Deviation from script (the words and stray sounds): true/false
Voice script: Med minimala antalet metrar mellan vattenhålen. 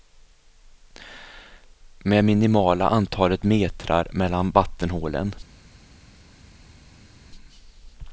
false